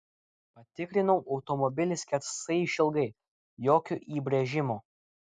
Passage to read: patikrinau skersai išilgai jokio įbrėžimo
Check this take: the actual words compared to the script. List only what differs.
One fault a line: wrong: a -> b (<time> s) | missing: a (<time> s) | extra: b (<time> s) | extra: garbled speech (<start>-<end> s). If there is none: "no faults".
extra: automobilį (1.4 s)